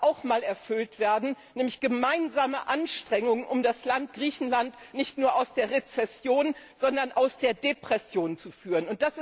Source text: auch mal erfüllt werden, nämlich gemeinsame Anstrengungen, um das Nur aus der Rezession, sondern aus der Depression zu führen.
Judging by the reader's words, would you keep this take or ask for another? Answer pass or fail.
fail